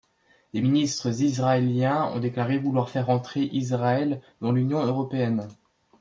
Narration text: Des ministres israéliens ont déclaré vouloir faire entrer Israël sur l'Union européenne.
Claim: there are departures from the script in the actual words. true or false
true